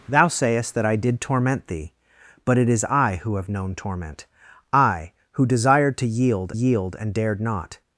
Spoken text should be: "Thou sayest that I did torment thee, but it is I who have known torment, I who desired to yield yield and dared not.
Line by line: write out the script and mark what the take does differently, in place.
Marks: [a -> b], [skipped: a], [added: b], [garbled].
"Thou sayest that I did torment thee, but it is I who have known torment, I who desired to yield yield and dared not.